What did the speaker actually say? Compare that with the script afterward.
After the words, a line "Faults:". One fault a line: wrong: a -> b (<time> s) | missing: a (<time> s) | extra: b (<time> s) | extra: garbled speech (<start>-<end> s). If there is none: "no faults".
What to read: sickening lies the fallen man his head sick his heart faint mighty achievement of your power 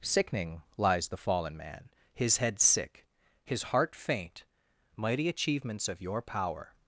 sickening lies the fallen man his head sick his heart faint mighty achievements of your power
Faults:
wrong: achievement -> achievements (5.3 s)